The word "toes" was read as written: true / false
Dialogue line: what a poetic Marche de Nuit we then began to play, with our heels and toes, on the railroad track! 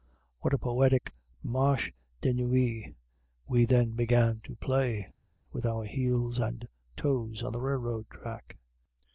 true